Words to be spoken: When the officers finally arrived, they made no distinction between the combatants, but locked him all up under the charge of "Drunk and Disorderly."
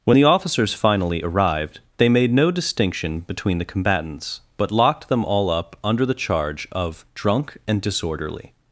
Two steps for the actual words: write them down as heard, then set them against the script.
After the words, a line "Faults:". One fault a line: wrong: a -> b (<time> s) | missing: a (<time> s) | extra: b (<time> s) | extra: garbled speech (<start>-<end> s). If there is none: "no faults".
When the officers finally arrived, they made no distinction between the combatants, but locked them all up under the charge of "Drunk and Disorderly."
Faults:
wrong: him -> them (5.1 s)